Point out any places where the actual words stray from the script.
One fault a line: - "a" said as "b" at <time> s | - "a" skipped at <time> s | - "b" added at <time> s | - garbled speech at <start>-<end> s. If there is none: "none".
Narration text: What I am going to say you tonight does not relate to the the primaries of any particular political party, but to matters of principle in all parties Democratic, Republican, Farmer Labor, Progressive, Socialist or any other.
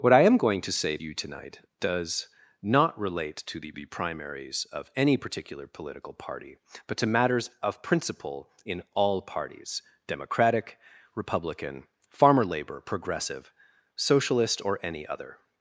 none